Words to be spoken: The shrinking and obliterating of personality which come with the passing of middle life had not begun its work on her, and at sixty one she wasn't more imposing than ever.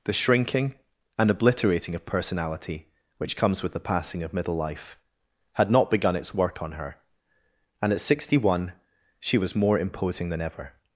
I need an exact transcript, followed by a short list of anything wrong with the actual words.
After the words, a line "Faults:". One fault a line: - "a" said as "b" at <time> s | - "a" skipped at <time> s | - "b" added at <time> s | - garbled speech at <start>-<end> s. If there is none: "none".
The shrinking and obliterating of personality which comes with the passing of middle life had not begun its work on her, and at sixty one she was more imposing than ever.
Faults:
- "come" said as "comes" at 3.4 s
- "wasn't" said as "was" at 9.4 s